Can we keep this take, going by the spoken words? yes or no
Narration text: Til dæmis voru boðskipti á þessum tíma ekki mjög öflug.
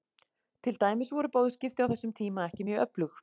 yes